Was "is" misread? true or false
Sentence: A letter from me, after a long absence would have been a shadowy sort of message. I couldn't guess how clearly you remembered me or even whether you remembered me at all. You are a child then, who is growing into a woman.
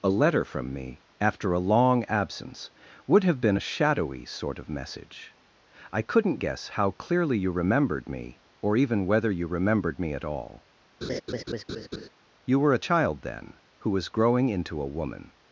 true